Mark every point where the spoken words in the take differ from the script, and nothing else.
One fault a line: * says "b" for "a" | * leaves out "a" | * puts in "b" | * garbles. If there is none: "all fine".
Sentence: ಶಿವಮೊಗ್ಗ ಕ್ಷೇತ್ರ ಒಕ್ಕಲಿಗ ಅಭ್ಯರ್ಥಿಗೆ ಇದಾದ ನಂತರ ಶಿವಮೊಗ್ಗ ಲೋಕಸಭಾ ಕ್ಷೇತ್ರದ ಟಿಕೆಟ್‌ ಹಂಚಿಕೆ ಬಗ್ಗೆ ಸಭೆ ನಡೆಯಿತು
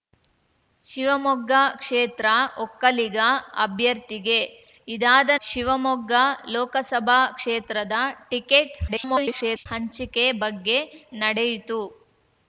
* leaves out "ನಂತರ"
* garbles
* leaves out "ಸಭೆ"